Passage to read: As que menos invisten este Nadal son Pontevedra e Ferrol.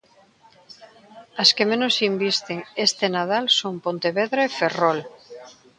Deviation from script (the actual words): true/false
false